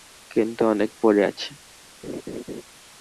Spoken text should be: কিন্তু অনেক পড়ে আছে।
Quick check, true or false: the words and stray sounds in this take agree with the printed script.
false